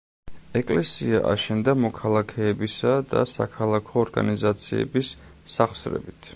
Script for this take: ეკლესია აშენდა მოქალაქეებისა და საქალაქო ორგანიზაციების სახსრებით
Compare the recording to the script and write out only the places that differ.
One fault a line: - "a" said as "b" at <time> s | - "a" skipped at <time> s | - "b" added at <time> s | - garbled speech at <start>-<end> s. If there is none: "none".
none